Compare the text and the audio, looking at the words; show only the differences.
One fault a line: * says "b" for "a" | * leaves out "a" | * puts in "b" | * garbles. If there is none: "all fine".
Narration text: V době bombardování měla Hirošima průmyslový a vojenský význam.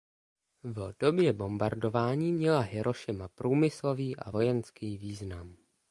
all fine